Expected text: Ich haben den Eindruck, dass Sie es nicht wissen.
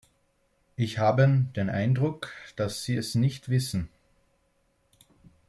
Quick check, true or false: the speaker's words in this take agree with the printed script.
true